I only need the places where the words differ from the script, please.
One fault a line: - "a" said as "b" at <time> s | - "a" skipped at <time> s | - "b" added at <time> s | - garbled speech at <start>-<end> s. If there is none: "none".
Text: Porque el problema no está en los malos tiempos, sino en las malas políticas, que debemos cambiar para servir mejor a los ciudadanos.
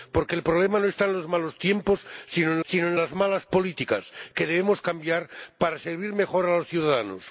- "sino en" added at 2.6 s